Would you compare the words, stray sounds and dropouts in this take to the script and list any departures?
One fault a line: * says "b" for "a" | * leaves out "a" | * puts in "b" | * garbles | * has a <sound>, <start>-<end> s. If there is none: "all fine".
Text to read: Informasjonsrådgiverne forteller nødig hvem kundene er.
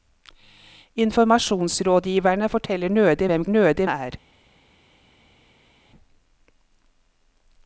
* says "nødig" for "kundene"